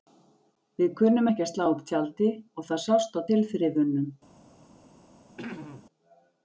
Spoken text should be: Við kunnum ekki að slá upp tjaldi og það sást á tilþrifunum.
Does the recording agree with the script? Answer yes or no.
yes